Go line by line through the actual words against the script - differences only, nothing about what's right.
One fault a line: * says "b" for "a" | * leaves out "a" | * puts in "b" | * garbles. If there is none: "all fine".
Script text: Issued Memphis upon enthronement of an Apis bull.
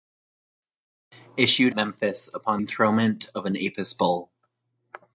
all fine